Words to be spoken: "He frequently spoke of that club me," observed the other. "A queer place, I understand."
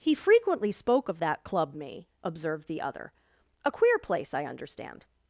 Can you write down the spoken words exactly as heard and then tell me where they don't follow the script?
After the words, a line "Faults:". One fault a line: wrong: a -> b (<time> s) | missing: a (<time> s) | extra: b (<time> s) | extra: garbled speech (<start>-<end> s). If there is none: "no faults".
"He frequently spoke of that club me," observed the other. "A queer place, I understand."
Faults:
no faults